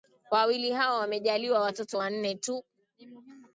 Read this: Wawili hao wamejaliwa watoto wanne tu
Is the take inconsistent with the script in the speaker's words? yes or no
no